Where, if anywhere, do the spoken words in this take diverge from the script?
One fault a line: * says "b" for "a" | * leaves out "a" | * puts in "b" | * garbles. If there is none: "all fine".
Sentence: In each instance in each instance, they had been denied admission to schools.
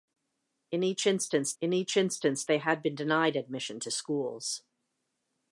all fine